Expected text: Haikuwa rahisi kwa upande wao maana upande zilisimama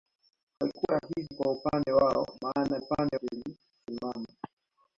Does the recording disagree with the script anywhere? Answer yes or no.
no